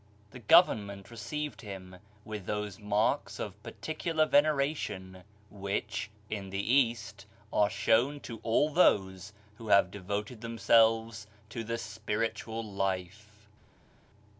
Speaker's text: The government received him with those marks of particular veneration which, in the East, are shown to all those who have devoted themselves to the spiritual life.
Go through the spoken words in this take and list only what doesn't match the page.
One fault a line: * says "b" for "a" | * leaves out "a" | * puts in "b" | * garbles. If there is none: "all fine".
all fine